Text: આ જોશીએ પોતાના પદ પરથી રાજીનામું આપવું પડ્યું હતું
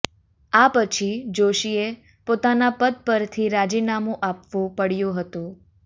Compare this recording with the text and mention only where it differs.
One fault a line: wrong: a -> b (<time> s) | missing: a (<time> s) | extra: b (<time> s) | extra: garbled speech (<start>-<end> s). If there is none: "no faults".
extra: પછી (0.7 s)